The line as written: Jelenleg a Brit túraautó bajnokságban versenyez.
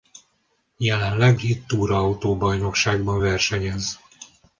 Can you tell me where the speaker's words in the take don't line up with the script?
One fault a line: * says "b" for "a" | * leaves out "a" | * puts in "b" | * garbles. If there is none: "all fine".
* leaves out "a"